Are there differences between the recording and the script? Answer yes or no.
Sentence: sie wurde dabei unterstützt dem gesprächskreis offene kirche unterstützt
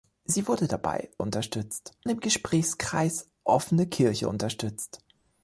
no